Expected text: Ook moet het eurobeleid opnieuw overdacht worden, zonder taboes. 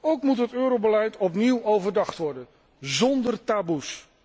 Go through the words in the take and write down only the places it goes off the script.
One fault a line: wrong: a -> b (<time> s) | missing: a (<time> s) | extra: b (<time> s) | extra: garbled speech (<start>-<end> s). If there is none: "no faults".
no faults